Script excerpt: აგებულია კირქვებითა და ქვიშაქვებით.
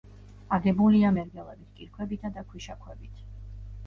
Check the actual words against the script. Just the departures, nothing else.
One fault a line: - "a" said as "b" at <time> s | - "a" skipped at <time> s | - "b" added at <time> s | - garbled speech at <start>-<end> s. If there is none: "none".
- "მერგელებით" added at 1.2 s